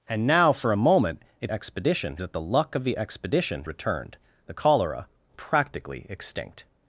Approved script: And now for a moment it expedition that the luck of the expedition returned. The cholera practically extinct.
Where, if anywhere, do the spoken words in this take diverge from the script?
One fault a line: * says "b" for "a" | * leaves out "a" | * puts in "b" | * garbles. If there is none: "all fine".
all fine